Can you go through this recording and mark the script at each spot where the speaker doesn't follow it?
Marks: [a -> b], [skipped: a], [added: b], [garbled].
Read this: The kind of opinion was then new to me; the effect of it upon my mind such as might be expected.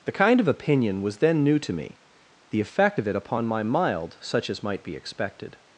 The kind of opinion was then new to me; the effect of it upon my [mind -> mild] such as might be expected.